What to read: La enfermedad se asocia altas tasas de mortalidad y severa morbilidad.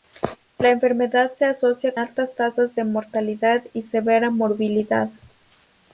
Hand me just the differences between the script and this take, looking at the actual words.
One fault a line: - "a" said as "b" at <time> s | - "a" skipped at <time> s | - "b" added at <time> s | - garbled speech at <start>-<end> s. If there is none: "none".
none